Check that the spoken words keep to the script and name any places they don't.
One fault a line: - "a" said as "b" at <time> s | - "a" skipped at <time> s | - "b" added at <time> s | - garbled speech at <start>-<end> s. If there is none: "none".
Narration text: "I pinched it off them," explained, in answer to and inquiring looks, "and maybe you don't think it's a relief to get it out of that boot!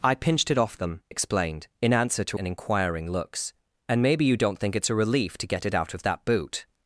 none